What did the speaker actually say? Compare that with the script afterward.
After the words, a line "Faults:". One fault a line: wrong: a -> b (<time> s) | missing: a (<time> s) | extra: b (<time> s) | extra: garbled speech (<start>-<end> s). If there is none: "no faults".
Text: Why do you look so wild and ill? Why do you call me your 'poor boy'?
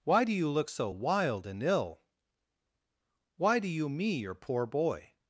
Why do you look so wild and ill? Why do you me your 'poor boy'?
Faults:
missing: call (3.9 s)